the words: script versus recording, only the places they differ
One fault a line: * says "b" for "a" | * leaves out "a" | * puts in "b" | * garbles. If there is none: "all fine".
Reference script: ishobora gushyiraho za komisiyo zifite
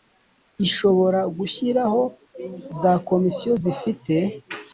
all fine